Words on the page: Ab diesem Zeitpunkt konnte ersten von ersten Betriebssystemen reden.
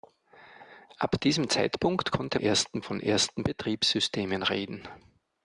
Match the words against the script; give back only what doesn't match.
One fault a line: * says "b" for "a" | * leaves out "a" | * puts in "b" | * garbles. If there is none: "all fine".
all fine